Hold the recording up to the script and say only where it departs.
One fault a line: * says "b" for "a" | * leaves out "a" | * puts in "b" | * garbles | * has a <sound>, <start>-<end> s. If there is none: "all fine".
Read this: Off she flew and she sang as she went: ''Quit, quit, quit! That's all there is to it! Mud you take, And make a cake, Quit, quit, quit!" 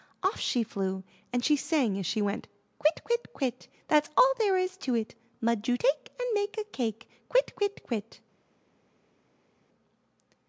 all fine